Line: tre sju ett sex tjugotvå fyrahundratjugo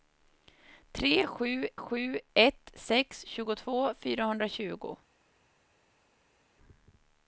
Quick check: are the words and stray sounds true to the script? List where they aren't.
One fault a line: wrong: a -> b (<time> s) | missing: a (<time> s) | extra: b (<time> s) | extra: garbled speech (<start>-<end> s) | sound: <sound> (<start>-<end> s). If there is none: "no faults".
extra: sju (1.8 s)